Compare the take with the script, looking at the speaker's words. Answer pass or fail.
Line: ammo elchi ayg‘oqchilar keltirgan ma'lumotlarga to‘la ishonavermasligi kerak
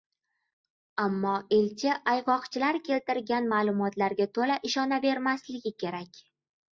pass